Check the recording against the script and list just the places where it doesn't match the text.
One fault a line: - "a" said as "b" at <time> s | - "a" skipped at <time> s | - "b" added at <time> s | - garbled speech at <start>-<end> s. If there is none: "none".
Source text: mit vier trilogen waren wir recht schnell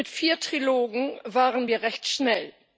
none